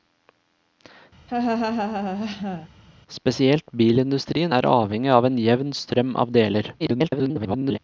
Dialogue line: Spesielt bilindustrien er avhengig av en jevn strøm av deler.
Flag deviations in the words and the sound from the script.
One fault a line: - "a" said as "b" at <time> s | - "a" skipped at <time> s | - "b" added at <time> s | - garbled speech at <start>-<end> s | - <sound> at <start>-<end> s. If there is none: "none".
- laugh at 1.3-2.7 s
- garbled speech at 6.8-7.8 s